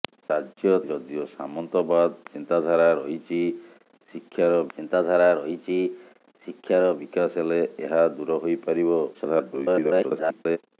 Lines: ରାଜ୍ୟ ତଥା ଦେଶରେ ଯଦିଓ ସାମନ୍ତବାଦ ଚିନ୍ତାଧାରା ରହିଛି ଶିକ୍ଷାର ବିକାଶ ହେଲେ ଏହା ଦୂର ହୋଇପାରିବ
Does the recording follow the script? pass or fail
fail